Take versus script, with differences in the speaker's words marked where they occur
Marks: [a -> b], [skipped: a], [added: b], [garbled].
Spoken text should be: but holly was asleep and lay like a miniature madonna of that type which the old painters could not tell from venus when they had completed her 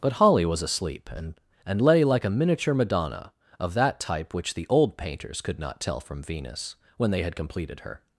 but holly was asleep and [added: and] lay like a miniature madonna of that type which the old painters could not tell from venus when they had completed her